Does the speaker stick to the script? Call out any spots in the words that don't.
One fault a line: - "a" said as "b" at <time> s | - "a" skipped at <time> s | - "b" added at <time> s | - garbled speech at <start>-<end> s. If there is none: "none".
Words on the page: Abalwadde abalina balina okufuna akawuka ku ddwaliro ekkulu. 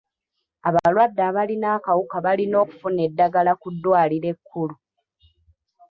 - "akawuka" added at 1.8 s
- "akawuka" said as "eddagala" at 3.1 s